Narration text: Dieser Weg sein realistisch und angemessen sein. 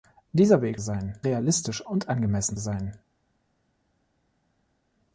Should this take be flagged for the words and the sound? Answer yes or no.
no